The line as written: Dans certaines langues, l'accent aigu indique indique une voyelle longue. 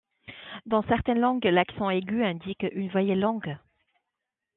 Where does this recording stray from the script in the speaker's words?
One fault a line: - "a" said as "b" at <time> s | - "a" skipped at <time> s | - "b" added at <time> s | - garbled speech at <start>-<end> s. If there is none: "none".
- "indique" skipped at 2.6 s